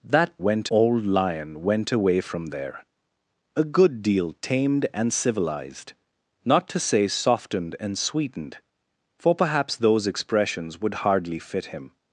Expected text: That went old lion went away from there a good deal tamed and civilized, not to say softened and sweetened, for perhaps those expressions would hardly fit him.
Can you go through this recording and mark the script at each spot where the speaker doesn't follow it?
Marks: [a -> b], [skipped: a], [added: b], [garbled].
That went old lion went away from there a good deal tamed and civilized, not to say softened and sweetened, for perhaps those expressions would hardly fit him.